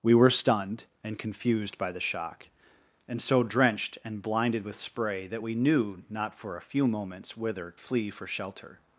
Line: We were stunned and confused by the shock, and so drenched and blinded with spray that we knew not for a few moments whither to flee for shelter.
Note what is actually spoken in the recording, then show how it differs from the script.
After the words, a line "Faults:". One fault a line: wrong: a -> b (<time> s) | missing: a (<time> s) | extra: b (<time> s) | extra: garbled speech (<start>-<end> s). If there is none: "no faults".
We were stunned and confused by the shock, and so drenched and blinded with spray that we knew not for a few moments whither flee for shelter.
Faults:
missing: to (7.7 s)